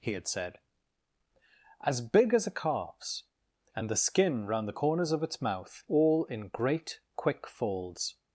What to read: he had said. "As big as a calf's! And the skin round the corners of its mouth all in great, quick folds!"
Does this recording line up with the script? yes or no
yes